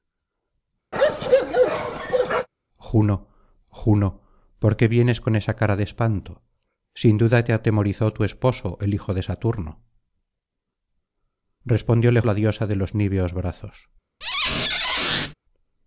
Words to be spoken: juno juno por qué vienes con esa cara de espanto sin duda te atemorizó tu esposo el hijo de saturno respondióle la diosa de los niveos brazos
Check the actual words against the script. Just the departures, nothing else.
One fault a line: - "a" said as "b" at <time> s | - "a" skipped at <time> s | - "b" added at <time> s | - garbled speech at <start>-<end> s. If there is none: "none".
none